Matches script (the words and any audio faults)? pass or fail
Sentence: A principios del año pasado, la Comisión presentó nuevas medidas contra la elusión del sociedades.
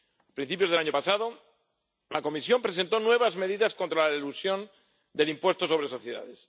fail